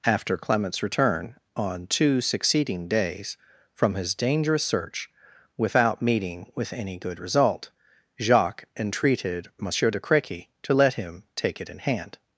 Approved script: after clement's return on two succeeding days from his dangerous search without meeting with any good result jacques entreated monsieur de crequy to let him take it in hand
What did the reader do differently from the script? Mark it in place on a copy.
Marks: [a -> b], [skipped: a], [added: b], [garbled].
after clement's return on two succeeding days from his dangerous search without meeting with any good result jacques entreated monsieur de crequy to let him take it in hand